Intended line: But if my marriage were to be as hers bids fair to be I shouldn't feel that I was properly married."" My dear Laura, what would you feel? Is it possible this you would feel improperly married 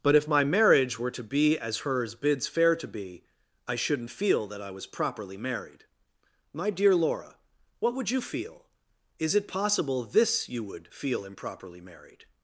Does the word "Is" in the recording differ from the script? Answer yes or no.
no